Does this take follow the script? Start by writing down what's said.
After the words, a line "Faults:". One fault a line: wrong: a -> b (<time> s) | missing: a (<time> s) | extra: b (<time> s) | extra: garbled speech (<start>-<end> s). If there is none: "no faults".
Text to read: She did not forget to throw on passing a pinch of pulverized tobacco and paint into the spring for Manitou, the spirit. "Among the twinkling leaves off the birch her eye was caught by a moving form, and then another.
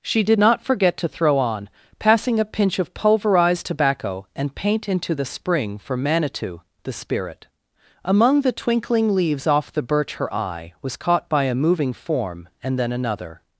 She did not forget to throw on passing a pinch of pulverized tobacco and paint into the spring for Manitou, the spirit. "Among the twinkling leaves off the birch her eye was caught by a moving form, and then another.
Faults:
no faults